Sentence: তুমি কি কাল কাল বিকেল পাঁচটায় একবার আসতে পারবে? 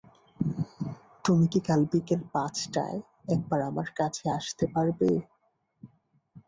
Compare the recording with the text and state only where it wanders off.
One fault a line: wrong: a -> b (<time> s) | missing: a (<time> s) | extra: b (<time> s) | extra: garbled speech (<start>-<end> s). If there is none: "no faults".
missing: কাল (1.8 s)
extra: আমার কাছে (3.7 s)